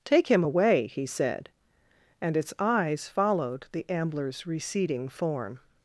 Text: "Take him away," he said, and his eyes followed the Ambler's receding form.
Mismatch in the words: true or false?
true